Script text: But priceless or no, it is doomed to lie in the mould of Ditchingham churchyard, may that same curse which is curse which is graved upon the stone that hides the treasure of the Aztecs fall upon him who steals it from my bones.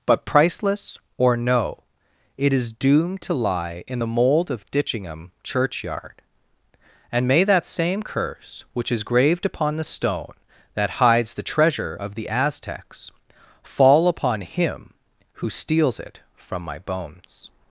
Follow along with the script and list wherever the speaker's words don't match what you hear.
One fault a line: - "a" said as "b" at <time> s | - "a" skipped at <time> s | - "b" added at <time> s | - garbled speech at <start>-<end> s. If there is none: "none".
- "and" added at 7.1 s
- "curse which is" skipped at 9.0 s